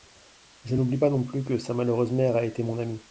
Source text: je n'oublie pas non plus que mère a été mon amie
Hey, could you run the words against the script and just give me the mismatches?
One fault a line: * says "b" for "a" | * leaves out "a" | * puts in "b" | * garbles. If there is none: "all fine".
* puts in "sa malheureuse"